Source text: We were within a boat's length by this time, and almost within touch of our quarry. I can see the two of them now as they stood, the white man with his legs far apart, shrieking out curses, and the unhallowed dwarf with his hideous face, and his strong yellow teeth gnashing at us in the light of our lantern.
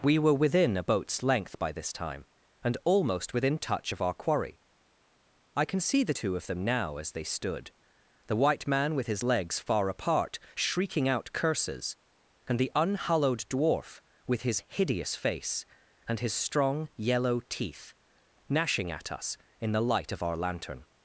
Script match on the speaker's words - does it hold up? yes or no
yes